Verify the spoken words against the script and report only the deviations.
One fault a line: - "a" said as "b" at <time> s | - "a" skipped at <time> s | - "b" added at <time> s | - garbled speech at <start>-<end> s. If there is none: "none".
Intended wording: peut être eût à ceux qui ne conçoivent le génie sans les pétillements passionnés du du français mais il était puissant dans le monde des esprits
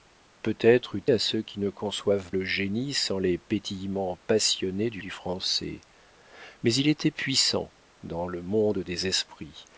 none